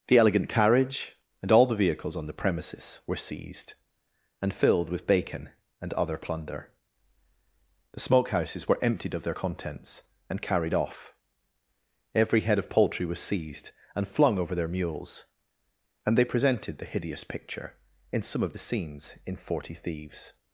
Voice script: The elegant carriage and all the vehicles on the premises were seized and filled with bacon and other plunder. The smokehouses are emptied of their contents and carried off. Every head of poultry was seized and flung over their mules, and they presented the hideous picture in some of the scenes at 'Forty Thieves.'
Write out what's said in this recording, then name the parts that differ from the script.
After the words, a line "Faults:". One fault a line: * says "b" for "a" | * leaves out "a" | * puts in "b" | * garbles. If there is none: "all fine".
The elegant carriage and all the vehicles on the premises were seized and filled with bacon and other plunder. The smokehouses were emptied of their contents and carried off. Every head of poultry was seized and flung over their mules, and they presented the hideous picture in some of the scenes in 'Forty Thieves.'
Faults:
* says "were" for "are"
* says "in" for "at"